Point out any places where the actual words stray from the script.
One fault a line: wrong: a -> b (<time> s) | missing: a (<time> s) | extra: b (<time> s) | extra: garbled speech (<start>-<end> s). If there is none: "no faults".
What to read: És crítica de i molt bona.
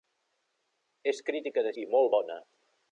no faults